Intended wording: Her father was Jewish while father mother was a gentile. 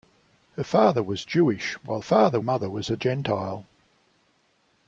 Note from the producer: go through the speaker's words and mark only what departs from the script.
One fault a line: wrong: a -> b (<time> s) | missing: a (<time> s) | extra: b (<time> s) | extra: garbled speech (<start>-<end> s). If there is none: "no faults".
no faults